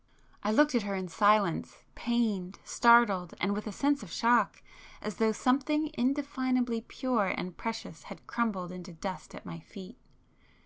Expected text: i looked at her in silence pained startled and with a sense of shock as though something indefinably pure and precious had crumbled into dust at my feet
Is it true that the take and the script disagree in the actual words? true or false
false